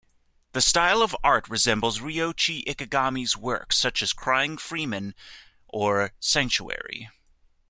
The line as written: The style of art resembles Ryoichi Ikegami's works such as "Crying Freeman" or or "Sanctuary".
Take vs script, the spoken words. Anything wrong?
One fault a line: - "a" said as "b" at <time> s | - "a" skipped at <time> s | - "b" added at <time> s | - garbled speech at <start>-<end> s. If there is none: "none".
- "or" skipped at 6.1 s